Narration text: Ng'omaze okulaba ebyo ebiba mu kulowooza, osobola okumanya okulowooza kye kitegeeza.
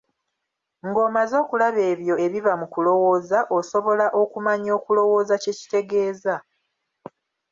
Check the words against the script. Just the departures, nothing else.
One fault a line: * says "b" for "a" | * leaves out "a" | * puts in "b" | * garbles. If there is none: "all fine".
all fine